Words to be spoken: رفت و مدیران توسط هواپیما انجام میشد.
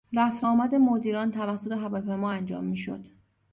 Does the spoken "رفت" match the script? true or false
true